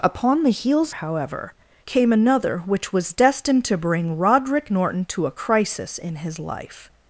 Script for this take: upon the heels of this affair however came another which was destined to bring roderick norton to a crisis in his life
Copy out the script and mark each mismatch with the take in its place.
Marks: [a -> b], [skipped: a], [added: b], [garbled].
upon the heels [skipped: of this affair] however came another which was destined to bring roderick norton to a crisis in his life